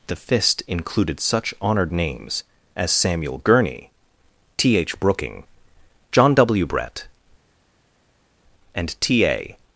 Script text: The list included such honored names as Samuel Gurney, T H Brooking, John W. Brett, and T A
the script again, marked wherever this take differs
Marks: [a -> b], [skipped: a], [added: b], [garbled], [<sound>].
The [list -> fist] included such honored names as Samuel Gurney, T H Brooking, John W. Brett, and T A